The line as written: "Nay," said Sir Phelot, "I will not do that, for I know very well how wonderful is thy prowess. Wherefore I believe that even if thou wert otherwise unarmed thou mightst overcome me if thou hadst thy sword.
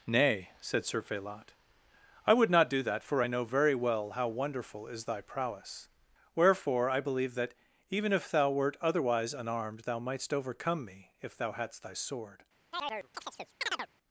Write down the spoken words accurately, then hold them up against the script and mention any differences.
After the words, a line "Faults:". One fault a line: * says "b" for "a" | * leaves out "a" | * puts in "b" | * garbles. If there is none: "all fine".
"Nay," said Sir Phelot, "I would not do that, for I know very well how wonderful is thy prowess. Wherefore I believe that even if thou wert otherwise unarmed thou mightst overcome me if thou hadst thy sword.
Faults:
* says "would" for "will"